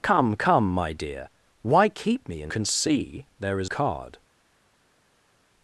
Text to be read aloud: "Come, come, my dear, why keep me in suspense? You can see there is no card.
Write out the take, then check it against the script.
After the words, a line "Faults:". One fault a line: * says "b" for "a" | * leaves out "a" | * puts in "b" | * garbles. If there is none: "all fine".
"Come, come, my dear, why keep me in can see there is card.
Faults:
* leaves out "suspense You"
* leaves out "no"